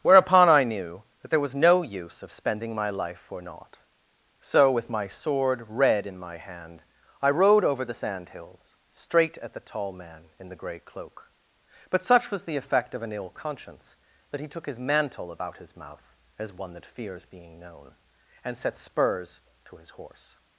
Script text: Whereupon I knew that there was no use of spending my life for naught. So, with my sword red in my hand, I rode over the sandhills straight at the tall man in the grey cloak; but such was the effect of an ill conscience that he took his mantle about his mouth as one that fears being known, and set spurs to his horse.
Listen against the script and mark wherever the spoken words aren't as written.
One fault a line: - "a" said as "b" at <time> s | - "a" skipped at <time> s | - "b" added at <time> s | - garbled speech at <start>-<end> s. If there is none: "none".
none